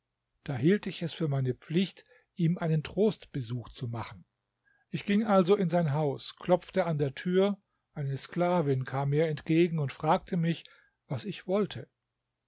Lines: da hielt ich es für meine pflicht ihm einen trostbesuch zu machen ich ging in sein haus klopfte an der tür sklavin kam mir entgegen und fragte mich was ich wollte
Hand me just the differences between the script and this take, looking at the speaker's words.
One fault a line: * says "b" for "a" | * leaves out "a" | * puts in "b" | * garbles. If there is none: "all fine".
* puts in "also"
* puts in "eine"